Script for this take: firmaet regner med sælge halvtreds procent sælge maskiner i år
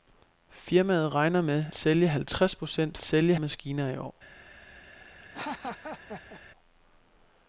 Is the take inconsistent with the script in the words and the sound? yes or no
yes